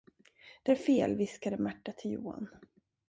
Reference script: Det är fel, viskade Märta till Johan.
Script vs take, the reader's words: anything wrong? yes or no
no